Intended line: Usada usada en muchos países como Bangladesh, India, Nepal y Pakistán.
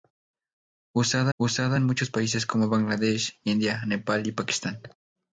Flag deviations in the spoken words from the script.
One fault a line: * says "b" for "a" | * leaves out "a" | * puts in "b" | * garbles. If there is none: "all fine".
all fine